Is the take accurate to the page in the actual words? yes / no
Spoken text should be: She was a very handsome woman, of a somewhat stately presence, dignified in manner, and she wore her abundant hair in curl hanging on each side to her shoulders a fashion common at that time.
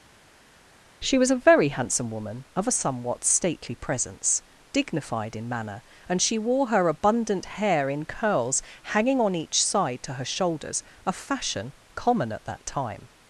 no